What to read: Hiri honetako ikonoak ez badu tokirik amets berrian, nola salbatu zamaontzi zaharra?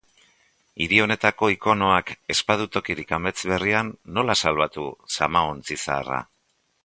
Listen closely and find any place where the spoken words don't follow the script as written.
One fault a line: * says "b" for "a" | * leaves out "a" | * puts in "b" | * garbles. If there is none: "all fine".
all fine